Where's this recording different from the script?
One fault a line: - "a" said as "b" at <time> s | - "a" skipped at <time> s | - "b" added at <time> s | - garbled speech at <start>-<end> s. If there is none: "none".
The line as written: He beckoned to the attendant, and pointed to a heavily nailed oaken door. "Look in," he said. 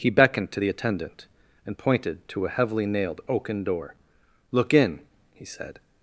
none